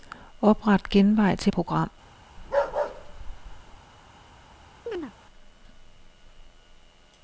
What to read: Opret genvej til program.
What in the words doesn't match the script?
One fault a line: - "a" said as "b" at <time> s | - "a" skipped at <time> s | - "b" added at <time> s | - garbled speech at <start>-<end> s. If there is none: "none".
none